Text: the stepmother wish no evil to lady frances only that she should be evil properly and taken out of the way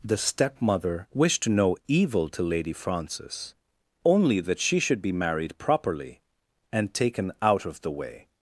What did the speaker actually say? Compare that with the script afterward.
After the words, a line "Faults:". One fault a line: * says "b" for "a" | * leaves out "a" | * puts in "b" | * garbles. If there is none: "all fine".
the stepmother wished no evil to lady frances only that she should be married properly and taken out of the way
Faults:
* says "wished" for "wish"
* says "married" for "evil"